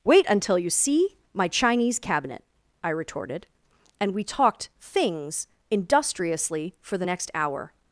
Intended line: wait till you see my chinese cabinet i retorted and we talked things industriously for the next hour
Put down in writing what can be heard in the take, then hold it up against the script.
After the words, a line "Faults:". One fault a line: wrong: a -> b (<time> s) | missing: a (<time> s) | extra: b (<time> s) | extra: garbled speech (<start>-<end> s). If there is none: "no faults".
wait until you see my chinese cabinet i retorted and we talked things industriously for the next hour
Faults:
wrong: till -> until (0.3 s)